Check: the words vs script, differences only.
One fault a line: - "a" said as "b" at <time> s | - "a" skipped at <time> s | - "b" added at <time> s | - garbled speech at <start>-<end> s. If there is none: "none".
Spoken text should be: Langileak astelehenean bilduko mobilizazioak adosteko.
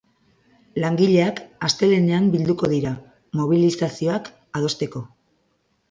- "dira" added at 2.7 s